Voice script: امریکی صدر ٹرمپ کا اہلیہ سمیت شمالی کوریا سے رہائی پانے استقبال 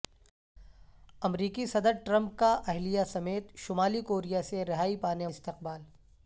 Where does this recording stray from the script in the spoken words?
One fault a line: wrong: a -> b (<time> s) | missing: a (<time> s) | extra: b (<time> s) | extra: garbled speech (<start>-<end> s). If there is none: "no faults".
no faults